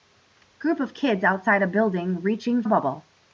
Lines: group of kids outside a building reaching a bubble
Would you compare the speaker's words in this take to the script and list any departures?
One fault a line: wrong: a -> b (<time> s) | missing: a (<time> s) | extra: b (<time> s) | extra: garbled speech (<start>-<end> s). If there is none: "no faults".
no faults